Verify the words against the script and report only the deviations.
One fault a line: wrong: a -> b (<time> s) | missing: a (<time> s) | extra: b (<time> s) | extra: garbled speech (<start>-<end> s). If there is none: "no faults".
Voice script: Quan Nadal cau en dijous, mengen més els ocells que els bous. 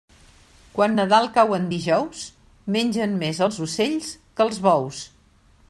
no faults